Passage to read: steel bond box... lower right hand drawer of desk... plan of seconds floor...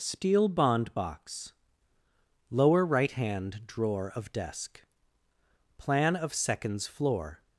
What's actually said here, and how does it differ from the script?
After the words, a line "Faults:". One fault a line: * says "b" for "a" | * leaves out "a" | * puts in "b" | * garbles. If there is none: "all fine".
steel bond box... lower right hand drawer of desk... plan of seconds floor...
Faults:
all fine